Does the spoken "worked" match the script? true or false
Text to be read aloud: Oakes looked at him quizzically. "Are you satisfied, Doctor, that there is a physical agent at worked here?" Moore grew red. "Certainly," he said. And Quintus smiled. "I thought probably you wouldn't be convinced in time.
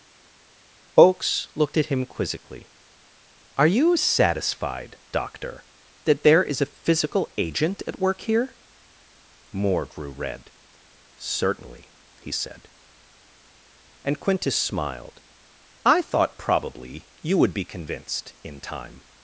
false